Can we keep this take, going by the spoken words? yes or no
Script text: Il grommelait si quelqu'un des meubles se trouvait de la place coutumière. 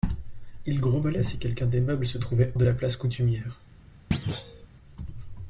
yes